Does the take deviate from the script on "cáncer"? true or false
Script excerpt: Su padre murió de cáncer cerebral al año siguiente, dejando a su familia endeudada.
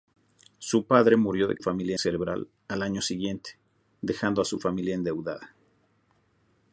true